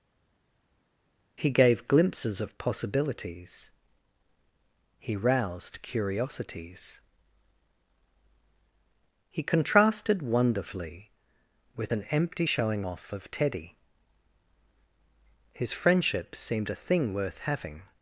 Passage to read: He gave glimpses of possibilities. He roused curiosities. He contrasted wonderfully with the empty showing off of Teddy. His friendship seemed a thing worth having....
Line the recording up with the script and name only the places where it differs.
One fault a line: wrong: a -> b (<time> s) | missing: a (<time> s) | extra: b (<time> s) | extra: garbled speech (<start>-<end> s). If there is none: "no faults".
wrong: the -> an (11.9 s)